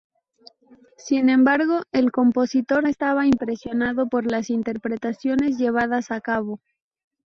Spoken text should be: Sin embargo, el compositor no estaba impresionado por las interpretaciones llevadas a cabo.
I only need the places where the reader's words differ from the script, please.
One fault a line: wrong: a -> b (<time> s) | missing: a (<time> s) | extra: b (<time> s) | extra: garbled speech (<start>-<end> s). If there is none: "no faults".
missing: no (2.9 s)